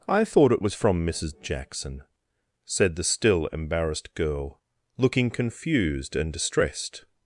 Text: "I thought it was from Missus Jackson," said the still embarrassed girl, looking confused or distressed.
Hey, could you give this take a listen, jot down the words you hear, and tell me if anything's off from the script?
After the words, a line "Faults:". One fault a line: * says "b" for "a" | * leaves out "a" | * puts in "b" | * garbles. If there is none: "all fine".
"I thought it was from Missus Jackson," said the still embarrassed girl, looking confused and distressed.
Faults:
* says "and" for "or"